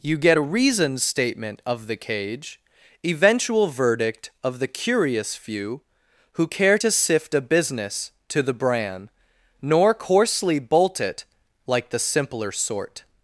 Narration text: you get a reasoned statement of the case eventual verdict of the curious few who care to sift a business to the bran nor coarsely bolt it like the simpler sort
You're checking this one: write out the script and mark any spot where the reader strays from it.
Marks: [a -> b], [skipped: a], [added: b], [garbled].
you get a reasoned statement of the [case -> cage] eventual verdict of the curious few who care to sift a business to the bran nor coarsely bolt it like the simpler sort